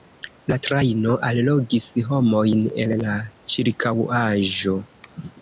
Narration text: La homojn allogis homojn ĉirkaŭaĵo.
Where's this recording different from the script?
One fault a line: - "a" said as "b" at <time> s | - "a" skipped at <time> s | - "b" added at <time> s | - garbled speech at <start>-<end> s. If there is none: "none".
- "homojn" said as "trajno" at 0.7 s
- "el la" added at 2.9 s